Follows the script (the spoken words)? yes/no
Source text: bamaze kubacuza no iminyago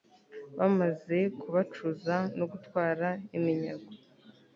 no